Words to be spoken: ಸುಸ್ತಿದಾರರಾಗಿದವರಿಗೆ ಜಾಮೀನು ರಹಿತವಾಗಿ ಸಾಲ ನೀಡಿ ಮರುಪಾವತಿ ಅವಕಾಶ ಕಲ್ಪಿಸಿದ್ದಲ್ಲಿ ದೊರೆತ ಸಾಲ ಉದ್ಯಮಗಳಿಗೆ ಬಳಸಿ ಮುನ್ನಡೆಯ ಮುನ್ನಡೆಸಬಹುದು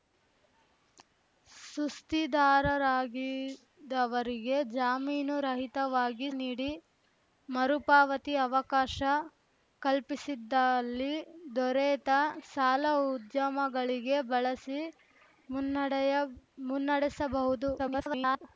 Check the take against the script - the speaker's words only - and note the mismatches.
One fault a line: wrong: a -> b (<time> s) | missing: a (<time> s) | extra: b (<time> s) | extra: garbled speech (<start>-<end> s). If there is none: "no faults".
missing: ಸಾಲ (6.3 s)
extra: garbled speech (17.8-18.4 s)